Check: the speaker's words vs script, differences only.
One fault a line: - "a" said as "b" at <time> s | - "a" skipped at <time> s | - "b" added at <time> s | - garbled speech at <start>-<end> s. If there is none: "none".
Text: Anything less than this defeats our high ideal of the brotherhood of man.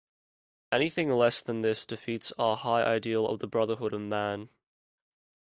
none